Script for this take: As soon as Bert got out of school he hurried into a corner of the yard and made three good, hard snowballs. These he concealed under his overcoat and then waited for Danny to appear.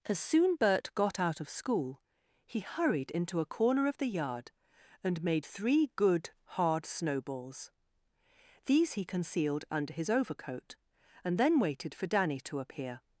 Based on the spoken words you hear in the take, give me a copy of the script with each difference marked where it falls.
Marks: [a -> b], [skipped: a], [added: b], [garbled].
As soon [skipped: as] Bert got out of school he hurried into a corner of the yard and made three good, hard snowballs. These he concealed under his overcoat and then waited for Danny to appear.